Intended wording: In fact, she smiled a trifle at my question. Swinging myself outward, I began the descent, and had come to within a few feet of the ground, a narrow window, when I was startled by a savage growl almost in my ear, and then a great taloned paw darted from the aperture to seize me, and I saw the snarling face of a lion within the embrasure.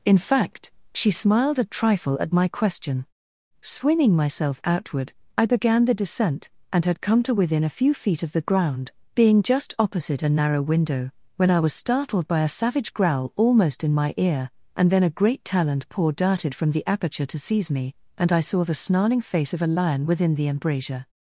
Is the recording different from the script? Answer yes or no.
yes